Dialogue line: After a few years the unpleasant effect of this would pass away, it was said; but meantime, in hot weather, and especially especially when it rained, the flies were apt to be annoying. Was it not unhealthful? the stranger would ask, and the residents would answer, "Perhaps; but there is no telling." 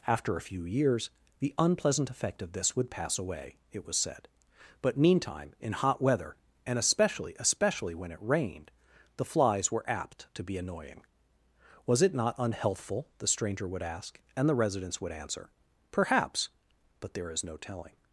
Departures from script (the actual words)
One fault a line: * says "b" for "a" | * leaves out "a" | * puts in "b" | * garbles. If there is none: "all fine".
all fine